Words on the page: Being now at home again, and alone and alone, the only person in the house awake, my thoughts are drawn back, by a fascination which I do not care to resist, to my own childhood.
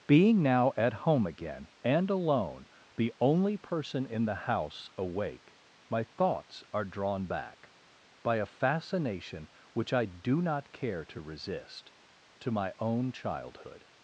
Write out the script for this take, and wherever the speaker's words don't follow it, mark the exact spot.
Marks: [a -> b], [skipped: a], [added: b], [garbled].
Being now at home again, and alone [skipped: and alone,] the only person in the house awake, my thoughts are drawn back, by a fascination which I do not care to resist, to my own childhood.